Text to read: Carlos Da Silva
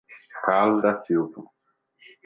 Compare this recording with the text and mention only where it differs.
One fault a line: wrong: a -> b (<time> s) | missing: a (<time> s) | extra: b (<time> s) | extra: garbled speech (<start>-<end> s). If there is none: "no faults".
no faults